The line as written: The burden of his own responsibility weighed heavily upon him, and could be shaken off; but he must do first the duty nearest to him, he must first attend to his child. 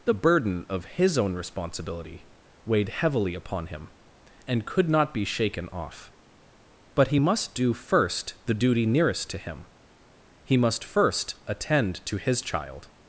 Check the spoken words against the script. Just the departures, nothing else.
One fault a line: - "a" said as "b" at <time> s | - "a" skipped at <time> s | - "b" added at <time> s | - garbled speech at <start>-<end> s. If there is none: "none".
- "not" added at 4.9 s